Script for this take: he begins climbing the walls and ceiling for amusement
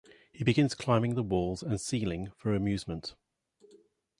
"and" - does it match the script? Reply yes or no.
yes